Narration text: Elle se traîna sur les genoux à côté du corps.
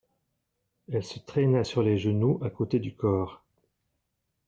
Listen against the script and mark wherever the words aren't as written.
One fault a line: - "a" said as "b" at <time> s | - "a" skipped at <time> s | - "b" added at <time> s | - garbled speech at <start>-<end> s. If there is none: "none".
none